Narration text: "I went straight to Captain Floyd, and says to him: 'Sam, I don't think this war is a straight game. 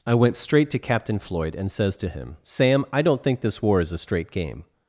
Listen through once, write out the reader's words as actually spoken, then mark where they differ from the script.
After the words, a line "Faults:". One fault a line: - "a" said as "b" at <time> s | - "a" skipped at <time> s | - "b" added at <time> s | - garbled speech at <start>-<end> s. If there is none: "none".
"I went straight to Captain Floyd, and says to him: 'Sam, I don't think this war is a straight game.
Faults:
none